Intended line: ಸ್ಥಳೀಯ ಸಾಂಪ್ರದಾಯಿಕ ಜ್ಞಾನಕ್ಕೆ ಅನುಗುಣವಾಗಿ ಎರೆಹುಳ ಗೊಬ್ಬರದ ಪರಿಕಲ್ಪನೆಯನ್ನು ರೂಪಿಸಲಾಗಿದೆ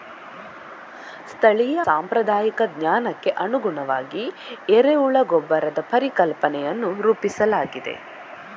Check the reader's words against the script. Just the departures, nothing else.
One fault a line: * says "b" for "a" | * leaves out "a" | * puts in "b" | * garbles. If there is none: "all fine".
all fine